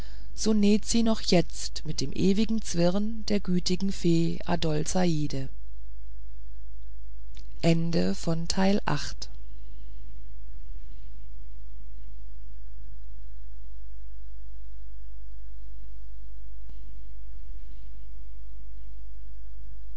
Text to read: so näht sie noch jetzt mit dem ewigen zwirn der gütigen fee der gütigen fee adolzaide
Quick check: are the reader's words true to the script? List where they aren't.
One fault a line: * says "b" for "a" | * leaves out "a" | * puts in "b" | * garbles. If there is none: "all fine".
* leaves out "der gütigen fee"